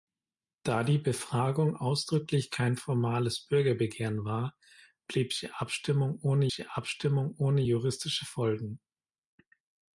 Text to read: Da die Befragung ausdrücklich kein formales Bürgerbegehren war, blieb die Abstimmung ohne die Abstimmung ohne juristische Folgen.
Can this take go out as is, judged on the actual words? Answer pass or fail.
pass